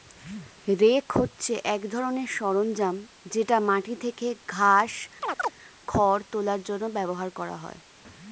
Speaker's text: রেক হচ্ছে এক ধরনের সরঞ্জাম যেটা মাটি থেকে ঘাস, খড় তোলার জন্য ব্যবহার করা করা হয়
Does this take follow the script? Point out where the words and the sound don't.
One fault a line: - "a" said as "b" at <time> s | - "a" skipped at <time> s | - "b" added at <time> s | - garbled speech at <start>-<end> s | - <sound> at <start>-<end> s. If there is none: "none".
- chirp at 5.2-5.5 s
- "করা" skipped at 7.6 s